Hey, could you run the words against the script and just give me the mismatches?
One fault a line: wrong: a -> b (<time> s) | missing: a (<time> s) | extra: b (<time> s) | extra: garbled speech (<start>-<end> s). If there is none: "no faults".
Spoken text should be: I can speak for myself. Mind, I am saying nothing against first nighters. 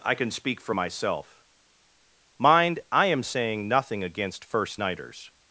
no faults